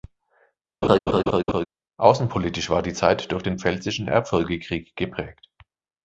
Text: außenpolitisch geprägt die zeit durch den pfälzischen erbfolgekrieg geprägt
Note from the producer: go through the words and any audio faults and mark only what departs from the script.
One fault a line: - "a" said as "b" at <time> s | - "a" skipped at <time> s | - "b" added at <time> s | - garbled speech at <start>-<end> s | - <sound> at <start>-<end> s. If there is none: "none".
- laugh at 0.8-1.7 s
- "geprägt" said as "war" at 2.7 s